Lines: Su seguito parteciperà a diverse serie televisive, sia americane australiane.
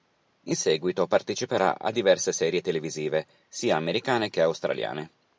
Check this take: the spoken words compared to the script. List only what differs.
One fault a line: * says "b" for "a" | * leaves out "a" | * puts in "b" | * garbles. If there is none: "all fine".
* says "In" for "Su"
* puts in "che"